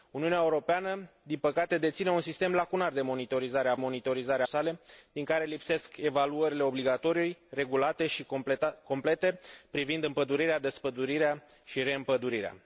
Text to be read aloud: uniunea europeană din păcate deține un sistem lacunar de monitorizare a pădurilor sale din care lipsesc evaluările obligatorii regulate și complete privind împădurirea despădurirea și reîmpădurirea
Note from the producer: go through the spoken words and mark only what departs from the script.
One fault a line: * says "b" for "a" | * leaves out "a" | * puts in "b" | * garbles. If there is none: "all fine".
* says "monitorizare" for "pădurilor"